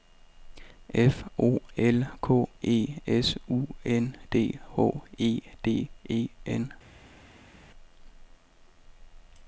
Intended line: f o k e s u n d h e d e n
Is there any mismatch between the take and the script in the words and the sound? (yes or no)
yes